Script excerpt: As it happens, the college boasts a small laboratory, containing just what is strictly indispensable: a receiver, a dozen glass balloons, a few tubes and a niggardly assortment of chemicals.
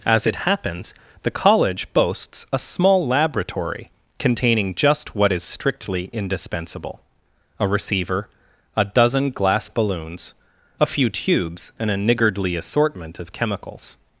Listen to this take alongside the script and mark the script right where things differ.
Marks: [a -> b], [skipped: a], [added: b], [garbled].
As it happens, the college boasts a small laboratory, containing just what is strictly indispensable: a receiver, a dozen glass balloons, a few tubes and a niggardly assortment of chemicals.